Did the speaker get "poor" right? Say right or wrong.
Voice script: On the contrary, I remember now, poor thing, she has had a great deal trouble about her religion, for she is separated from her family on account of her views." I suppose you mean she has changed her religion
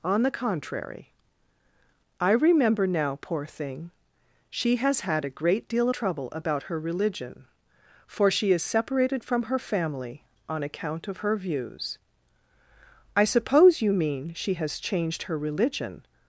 right